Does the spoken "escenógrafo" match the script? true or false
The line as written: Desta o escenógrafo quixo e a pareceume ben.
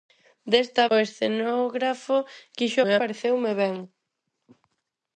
true